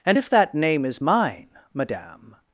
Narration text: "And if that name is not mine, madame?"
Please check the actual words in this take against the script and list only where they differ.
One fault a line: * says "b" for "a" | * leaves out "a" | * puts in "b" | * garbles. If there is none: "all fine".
* leaves out "not"